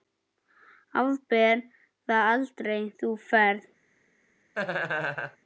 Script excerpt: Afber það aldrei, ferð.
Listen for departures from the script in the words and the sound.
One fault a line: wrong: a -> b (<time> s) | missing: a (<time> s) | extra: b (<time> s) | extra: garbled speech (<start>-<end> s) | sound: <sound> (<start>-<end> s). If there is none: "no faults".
extra: þú (3.0 s)
sound: laugh (4.6-5.4 s)